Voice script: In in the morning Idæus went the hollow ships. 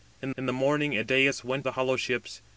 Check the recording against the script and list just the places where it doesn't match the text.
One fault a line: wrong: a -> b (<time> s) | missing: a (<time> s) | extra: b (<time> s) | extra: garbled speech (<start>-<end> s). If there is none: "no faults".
no faults